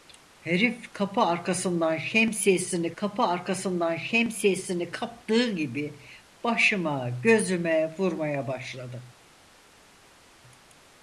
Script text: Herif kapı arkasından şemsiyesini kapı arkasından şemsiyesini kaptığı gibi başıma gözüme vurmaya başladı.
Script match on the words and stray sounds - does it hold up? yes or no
yes